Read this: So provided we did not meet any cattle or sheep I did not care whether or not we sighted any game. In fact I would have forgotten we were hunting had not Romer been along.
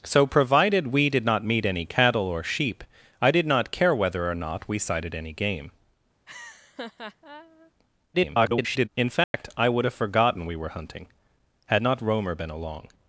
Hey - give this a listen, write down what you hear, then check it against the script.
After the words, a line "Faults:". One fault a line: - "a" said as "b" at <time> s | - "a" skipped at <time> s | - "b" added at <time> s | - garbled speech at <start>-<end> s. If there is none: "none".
So provided we did not meet any cattle or sheep I did not care whether or not we sighted any game. [garbled] In fact I would have forgotten we were hunting had not Romer been along.
Faults:
- garbled speech at 8.1-8.9 s